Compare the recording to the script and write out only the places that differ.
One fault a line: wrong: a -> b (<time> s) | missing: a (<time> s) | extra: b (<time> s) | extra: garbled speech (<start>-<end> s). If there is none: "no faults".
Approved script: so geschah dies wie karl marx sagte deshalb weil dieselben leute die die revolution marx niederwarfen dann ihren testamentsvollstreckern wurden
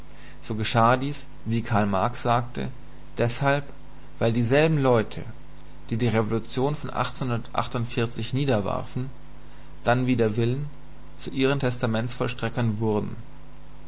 wrong: marx -> von (6.7 s)
extra: wider willen zu (10.1 s)